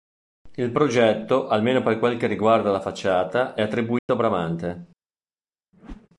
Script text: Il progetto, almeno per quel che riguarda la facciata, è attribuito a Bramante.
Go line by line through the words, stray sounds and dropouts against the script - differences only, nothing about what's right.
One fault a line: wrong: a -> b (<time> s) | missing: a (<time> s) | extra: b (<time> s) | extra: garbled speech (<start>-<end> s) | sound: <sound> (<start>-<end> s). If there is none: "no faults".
sound: dropout (4.0-4.1 s)
sound: whoosh (5.7-6.1 s)